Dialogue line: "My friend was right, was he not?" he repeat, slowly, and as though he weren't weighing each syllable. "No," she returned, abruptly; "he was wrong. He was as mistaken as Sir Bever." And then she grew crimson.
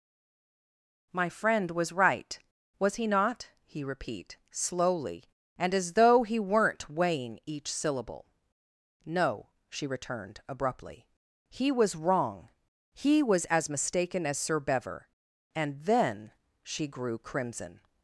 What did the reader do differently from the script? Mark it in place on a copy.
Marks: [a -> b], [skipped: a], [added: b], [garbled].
"My friend was right, was he not?" he repeat, slowly, and as though he weren't weighing each syllable. "No," she returned, abruptly; "he was wrong. He was as mistaken as Sir Bever." And then she grew crimson.